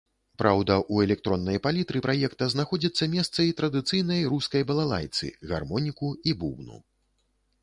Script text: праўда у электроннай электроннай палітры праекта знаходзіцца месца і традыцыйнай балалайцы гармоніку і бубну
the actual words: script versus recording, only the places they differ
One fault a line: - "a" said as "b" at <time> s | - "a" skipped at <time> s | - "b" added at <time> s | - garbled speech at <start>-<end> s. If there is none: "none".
- "электроннай" skipped at 1.6 s
- "рускай" added at 4.4 s